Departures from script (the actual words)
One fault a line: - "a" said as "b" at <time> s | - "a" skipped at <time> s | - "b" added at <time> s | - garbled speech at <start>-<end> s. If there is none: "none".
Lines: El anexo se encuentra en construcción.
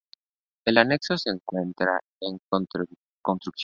none